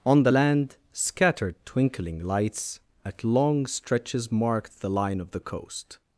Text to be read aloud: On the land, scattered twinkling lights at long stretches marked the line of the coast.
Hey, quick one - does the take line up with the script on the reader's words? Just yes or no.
yes